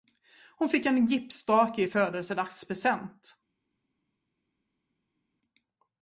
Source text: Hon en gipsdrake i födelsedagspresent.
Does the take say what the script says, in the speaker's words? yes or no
no